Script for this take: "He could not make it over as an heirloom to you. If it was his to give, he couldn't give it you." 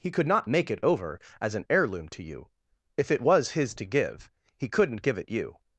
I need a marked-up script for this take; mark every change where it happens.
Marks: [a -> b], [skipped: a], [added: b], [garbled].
"He could not make it over as an heirloom to you. If it was his to give, he couldn't give it you."